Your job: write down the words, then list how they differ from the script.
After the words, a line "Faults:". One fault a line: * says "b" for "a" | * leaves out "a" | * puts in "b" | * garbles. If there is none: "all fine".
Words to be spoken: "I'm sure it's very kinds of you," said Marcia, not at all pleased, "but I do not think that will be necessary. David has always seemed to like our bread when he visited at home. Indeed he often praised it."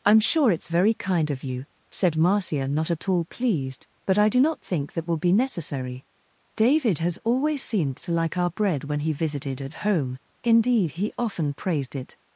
"I'm sure it's very kind of you," said Marcia, not at all pleased, "but I do not think that will be necessary. David has always seemed to like our bread when he visited at home. Indeed he often praised it."
Faults:
* says "kind" for "kinds"